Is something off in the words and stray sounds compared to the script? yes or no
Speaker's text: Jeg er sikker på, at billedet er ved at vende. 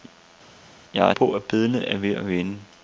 yes